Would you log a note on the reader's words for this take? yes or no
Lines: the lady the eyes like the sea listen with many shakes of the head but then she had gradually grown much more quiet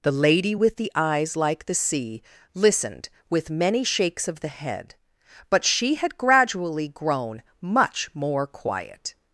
yes